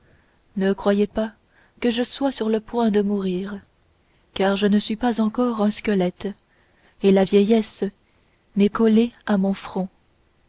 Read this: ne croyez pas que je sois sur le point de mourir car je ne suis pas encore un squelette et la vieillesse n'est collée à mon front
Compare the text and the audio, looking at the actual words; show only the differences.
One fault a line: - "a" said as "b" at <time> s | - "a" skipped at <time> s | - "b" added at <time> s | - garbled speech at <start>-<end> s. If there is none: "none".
none